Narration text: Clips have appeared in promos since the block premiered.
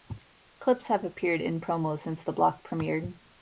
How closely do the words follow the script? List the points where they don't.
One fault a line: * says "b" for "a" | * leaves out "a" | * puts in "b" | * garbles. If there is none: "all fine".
all fine